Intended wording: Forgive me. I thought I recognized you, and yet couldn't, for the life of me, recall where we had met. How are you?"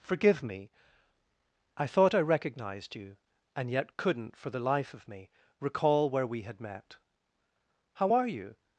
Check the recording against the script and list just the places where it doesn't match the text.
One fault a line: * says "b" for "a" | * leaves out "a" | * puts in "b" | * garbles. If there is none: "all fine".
all fine